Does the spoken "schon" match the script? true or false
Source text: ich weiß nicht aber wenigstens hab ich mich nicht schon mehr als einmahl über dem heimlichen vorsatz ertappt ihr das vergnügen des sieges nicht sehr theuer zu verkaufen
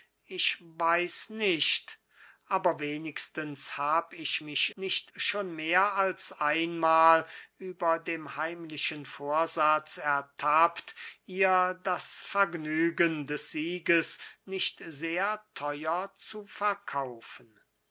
true